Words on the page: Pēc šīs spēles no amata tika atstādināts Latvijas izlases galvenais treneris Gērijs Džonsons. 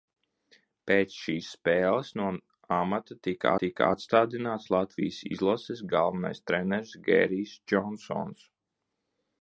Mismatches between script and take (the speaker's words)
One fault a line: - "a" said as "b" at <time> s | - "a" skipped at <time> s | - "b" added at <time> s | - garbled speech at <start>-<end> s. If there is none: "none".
- "tika" added at 3.6 s